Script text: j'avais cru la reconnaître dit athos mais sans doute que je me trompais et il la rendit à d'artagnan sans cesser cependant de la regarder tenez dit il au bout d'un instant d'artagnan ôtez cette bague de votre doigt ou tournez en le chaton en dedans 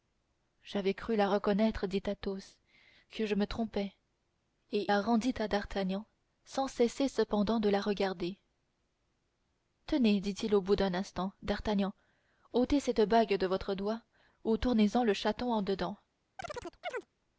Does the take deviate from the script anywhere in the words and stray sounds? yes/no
yes